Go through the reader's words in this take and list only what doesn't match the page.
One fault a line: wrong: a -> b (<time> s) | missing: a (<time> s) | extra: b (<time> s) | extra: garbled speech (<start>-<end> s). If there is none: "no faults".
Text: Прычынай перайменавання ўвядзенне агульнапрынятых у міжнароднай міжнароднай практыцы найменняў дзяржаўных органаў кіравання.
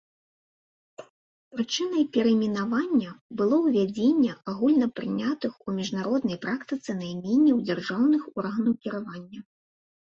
extra: было (3.4 s)
missing: міжнароднай (6.4 s)